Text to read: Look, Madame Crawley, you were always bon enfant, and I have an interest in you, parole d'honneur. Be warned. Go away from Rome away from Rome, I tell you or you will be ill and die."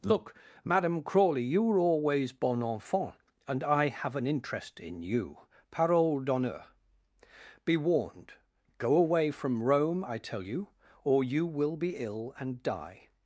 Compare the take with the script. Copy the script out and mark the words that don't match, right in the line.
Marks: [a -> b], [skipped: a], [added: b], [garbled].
Look, Madame Crawley, you were always bon enfant, and I have an interest in you, parole d'honneur. Be warned. Go away from Rome [skipped: away from Rome,] I tell you or you will be ill and die."